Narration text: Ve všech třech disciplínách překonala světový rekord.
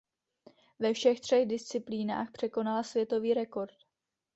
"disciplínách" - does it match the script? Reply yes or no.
yes